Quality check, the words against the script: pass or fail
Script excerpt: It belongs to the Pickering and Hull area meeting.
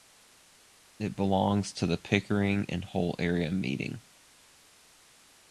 pass